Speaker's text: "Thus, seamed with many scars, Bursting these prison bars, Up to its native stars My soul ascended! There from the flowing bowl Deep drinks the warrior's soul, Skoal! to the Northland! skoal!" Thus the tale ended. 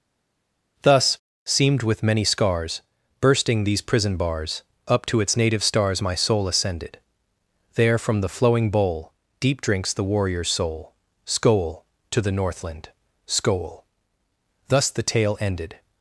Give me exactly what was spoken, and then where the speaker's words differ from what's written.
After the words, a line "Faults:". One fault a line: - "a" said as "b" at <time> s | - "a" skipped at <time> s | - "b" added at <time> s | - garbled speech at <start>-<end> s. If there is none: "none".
"Thus, seamed with many scars, Bursting these prison bars, Up to its native stars My soul ascended! There from the flowing bowl Deep drinks the warrior's soul, Skoal! to the Northland! skoal!" Thus the tale ended.
Faults:
none